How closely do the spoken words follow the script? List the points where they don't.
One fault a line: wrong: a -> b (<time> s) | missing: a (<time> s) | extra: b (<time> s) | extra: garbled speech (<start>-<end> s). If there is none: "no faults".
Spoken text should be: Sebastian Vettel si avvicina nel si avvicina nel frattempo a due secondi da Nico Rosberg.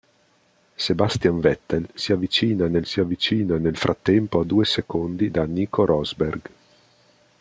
no faults